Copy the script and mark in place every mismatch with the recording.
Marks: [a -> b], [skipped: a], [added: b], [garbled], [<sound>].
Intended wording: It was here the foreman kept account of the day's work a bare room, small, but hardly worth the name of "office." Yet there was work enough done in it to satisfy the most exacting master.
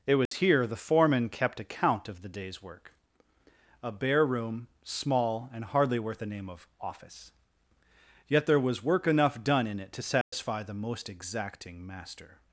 It was [dropout] here the foreman kept account of the day's work a bare room, small, [but -> and] hardly worth the name of "office." Yet there was work enough done in it to satisfy [dropout] the most exacting master.